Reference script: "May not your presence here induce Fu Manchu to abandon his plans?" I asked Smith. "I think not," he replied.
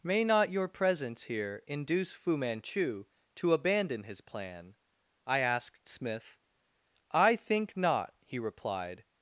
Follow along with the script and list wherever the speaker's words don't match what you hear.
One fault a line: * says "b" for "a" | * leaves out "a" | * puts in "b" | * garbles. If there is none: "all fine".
* says "plan" for "plans"